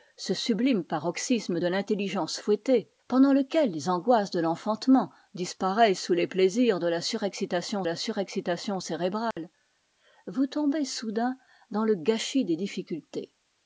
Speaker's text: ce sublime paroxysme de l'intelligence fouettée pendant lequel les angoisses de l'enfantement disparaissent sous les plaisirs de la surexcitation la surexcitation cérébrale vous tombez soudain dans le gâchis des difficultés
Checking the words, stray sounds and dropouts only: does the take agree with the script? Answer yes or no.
no